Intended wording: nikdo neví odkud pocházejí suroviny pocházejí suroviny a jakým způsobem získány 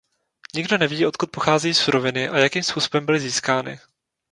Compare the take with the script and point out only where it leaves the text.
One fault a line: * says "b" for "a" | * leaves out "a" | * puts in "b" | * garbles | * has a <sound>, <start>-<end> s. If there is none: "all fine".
* leaves out "pocházejí suroviny"
* puts in "byly"